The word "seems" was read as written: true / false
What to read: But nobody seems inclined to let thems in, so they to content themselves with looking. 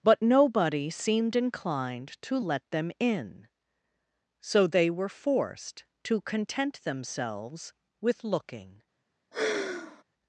false